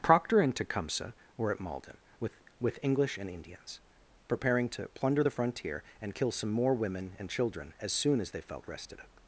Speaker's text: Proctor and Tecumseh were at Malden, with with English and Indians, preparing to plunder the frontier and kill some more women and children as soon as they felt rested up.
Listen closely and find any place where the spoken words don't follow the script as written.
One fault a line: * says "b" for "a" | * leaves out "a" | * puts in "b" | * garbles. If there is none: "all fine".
all fine